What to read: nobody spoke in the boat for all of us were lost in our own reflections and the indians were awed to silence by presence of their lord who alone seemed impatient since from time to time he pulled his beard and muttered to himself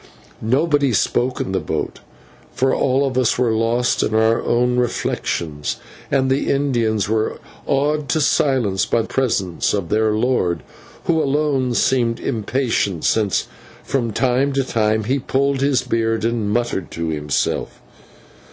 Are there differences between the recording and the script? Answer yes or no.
no